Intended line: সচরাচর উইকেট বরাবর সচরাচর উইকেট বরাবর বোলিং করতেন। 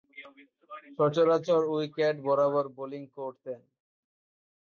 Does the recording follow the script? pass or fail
fail